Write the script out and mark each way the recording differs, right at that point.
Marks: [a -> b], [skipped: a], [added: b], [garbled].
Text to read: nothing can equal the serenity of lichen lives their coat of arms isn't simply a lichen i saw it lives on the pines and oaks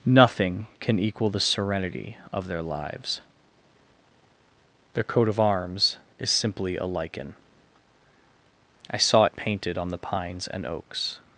nothing can equal the serenity of [lichen -> their] lives their coat of arms [isn't -> is] simply a lichen i saw it [lives -> painted] on the pines and oaks